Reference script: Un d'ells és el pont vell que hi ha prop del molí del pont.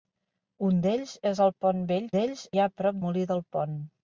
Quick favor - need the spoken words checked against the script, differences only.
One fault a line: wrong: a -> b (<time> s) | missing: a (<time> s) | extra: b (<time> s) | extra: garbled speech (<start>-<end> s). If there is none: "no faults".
wrong: que -> d'ells (2.1 s)
missing: del (3.0 s)